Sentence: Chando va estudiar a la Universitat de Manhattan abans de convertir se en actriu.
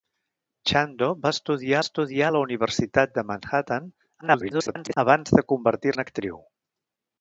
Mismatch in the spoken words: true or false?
true